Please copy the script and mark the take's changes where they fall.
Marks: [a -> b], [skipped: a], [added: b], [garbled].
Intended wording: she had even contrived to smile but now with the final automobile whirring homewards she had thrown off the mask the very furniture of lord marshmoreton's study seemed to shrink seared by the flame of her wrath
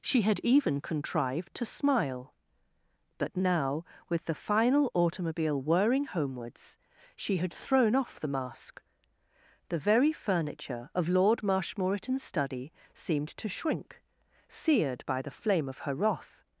she had even contrived to smile but now with the final automobile whirring homewards she had thrown off the mask the very furniture of lord marshmoreton's study seemed to shrink seared by the flame of her wrath